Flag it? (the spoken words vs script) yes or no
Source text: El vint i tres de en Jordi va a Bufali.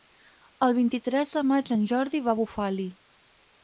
yes